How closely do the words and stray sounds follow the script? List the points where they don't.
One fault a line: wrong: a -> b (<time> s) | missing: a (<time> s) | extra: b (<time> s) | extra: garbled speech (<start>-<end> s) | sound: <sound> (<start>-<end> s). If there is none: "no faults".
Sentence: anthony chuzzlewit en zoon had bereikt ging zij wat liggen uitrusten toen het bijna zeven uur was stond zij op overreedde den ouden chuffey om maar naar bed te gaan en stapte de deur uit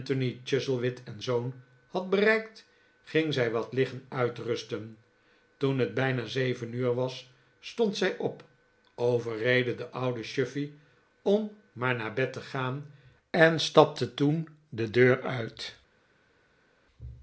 extra: toen (14.1 s)